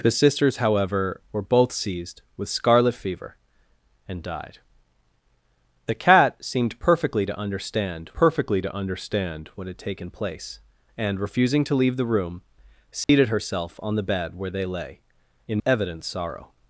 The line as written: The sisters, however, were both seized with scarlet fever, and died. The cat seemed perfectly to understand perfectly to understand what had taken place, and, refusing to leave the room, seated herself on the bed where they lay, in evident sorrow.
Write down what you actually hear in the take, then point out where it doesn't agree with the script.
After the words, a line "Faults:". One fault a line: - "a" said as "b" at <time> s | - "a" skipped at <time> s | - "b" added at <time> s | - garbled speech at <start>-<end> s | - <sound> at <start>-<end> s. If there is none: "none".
The sisters, however, were both seized with scarlet fever, and died. The cat seemed perfectly to understand perfectly to understand what had taken place, and, refusing to leave the room, seated herself on the bed where they lay, in evident sorrow.
Faults:
- dropout at 13.0-13.1 s